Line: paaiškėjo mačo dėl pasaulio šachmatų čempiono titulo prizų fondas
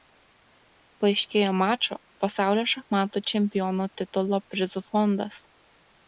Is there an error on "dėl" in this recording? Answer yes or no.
yes